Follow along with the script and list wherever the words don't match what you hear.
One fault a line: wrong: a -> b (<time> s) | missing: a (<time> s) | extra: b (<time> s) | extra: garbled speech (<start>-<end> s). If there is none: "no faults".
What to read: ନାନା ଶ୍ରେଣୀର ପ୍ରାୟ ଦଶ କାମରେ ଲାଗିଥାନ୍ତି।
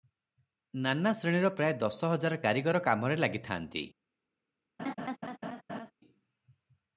extra: ହଜାର କାରିଗର (2.1 s)